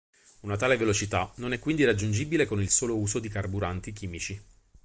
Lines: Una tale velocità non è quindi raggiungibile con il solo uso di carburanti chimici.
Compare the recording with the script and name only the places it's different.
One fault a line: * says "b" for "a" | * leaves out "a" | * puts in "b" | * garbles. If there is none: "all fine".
all fine